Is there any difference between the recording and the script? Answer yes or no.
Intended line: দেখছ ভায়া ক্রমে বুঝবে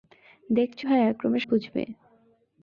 no